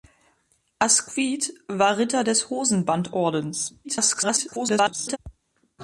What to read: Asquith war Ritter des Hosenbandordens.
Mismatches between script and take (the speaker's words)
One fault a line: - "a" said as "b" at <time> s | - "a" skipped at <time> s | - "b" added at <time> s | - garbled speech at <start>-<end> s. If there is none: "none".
- garbled speech at 3.8-5.2 s